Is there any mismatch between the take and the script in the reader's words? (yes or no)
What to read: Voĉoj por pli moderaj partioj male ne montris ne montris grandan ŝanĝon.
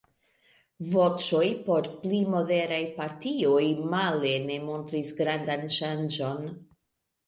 yes